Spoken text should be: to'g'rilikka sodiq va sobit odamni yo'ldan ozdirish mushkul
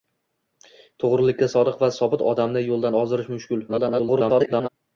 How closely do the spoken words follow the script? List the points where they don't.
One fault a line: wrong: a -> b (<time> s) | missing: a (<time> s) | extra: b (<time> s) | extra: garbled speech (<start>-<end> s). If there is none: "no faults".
extra: garbled speech (3.7-4.7 s)